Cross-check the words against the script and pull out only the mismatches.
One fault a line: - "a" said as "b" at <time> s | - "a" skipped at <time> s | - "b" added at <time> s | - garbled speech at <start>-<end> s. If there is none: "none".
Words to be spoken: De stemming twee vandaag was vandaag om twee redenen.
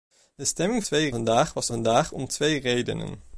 none